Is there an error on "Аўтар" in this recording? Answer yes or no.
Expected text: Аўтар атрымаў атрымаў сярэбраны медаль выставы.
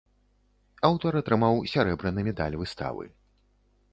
no